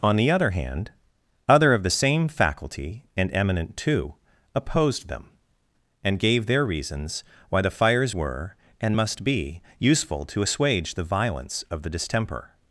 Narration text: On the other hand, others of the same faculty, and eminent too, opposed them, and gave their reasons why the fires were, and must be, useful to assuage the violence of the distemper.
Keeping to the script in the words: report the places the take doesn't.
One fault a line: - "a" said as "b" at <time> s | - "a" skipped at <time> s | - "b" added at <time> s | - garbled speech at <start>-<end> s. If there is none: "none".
- "others" said as "other" at 1.5 s